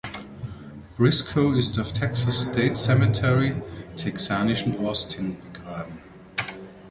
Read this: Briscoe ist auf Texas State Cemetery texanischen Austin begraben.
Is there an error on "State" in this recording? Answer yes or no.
no